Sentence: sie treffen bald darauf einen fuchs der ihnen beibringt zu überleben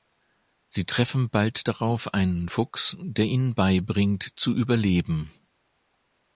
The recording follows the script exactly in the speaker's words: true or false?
true